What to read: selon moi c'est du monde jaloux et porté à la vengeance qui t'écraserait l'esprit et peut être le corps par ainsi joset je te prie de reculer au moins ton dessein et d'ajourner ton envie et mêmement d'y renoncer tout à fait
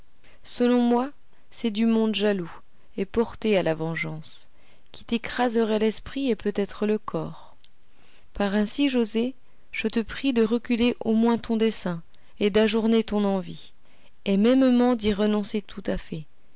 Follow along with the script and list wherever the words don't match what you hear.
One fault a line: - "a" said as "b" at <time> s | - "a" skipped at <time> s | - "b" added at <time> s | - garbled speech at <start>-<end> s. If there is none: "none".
none